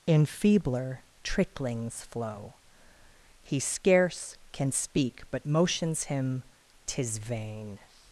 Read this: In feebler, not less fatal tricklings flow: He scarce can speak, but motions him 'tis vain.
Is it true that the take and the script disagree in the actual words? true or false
true